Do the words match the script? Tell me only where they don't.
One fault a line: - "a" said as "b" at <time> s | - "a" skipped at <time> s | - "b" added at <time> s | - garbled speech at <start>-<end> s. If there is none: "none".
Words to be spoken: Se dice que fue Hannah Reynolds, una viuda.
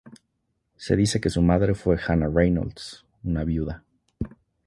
- "su madre" added at 1.3 s